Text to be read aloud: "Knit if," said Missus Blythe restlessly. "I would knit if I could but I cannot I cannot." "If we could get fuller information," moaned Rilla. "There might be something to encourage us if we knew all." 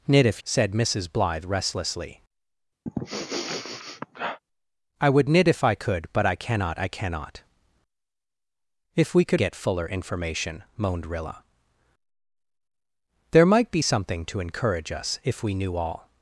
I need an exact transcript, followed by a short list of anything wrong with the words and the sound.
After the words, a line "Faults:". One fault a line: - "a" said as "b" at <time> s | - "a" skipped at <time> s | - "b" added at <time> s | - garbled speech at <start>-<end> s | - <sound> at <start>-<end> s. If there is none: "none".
"Knit if," said Missus Blythe restlessly. "I would knit if I could but I cannot I cannot." "If we could get fuller information," moaned Rilla. "There might be something to encourage us if we knew all."
Faults:
- sniff at 2.9-4.4 s